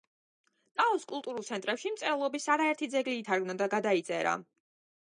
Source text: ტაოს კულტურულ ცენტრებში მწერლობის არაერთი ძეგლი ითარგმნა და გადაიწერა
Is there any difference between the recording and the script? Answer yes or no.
no